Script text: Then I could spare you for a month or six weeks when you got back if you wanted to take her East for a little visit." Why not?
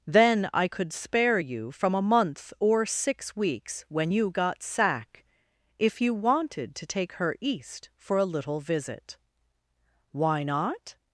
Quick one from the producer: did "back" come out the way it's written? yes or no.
no